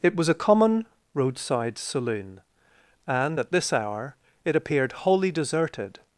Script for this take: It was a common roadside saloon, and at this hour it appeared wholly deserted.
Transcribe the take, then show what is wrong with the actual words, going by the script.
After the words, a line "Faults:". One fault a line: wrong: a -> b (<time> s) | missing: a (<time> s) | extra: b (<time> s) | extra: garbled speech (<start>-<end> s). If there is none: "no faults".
It was a common roadside saloon, and at this hour it appeared wholly deserted.
Faults:
no faults